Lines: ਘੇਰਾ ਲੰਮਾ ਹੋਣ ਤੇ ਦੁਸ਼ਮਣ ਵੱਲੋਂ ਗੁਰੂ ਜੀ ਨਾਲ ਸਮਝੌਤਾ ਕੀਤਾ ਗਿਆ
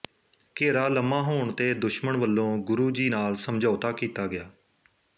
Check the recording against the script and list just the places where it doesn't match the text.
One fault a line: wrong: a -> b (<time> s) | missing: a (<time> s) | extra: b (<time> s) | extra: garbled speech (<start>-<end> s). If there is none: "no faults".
no faults